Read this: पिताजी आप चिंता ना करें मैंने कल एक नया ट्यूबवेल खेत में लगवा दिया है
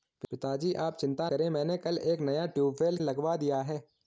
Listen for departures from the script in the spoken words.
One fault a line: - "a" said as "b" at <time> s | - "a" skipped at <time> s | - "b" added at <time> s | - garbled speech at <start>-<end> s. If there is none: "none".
- "ना" skipped at 1.3 s
- "खेत में" skipped at 3.0 s